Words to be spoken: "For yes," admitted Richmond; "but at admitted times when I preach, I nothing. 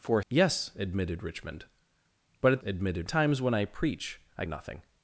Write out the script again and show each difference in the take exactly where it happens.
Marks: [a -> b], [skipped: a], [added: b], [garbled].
"For yes," admitted Richmond; "but at admitted times when I preach, I nothing.